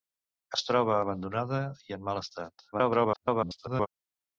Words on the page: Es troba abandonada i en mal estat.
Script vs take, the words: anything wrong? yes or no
yes